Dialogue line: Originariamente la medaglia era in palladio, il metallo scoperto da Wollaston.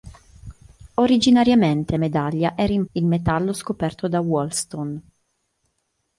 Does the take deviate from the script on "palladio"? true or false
true